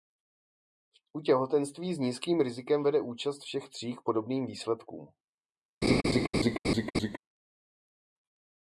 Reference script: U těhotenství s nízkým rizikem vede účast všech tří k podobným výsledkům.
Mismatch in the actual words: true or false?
false